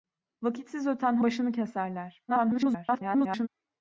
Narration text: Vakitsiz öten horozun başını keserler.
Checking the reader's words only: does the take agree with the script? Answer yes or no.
no